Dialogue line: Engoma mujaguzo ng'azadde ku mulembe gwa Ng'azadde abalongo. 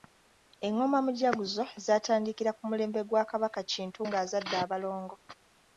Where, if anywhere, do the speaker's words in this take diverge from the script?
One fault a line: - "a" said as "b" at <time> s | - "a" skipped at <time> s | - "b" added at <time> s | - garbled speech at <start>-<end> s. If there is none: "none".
- "ng'azadde" said as "zaatandikira" at 1.9 s
- "Kabaka Kintu" added at 3.3 s